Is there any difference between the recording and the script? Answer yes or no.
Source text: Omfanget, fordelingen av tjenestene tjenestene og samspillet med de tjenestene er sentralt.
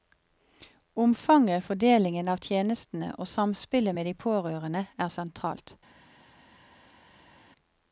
yes